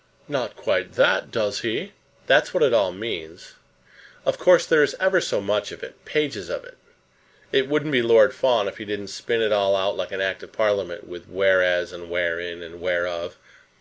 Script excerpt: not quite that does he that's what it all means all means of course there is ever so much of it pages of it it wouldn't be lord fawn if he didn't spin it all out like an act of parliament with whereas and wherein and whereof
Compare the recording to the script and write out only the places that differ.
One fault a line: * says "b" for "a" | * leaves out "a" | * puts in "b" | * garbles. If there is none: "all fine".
* leaves out "all means"